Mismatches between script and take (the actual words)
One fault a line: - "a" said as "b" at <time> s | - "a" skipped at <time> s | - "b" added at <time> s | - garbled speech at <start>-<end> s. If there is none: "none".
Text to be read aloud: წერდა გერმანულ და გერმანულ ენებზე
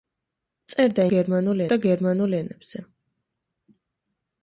none